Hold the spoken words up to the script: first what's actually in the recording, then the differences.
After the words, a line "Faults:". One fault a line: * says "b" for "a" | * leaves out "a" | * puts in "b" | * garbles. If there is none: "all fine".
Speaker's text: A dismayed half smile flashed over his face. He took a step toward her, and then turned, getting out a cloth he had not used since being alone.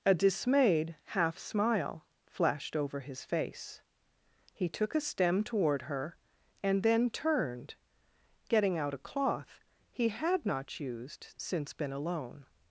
A dismayed half smile flashed over his face. He took a stem toward her, and then turned, getting out a cloth he had not used since been alone.
Faults:
* says "stem" for "step"
* says "been" for "being"